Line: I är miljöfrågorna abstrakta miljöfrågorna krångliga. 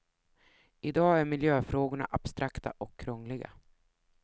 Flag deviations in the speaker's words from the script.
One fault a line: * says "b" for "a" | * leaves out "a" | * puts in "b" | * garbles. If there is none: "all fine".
* puts in "dag"
* says "och" for "miljöfrågorna"